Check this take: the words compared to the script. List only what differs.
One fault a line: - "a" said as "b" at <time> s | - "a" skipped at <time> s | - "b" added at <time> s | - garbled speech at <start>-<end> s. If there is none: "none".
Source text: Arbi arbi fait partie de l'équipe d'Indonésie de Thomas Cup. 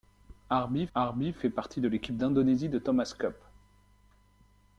none